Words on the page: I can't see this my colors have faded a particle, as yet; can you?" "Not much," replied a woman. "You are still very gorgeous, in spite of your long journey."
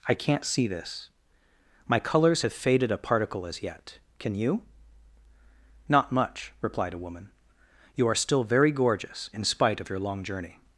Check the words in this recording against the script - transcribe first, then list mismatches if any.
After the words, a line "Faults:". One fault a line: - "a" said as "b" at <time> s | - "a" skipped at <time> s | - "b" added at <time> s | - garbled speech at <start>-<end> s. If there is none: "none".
I can't see this my colors have faded a particle, as yet; can you?" "Not much," replied a woman. "You are still very gorgeous, in spite of your long journey."
Faults:
none